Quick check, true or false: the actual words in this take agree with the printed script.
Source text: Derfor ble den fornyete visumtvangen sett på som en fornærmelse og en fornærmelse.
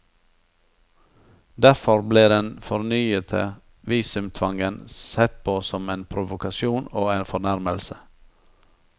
false